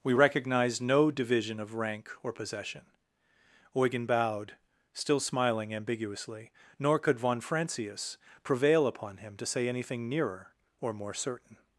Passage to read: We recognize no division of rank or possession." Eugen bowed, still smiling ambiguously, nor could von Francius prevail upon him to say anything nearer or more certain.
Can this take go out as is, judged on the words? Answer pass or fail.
pass